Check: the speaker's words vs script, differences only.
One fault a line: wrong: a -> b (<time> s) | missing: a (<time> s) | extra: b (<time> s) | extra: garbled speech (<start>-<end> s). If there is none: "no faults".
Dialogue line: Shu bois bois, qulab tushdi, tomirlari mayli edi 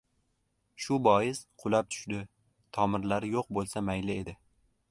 missing: bois (1.4 s)
extra: yo‘q bo‘lsa (3.3 s)